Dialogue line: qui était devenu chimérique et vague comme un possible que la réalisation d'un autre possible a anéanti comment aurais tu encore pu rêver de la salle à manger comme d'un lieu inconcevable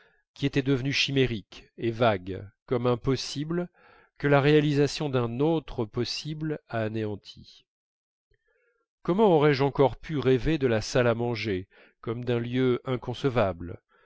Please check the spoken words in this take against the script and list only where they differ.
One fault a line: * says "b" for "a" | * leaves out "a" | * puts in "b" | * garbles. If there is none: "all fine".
* says "je" for "tu"